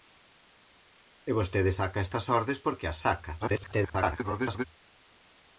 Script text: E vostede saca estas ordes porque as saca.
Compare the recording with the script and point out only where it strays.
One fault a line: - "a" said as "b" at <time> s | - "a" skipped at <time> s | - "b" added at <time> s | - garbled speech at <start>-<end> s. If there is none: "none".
- garbled speech at 3.4-4.6 s